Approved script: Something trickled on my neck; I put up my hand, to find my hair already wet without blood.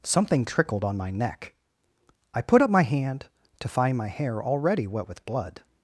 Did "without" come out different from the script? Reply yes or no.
yes